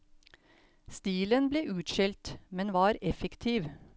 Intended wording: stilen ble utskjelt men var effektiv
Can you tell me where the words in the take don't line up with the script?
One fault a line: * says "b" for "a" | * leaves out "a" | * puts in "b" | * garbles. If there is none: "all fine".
all fine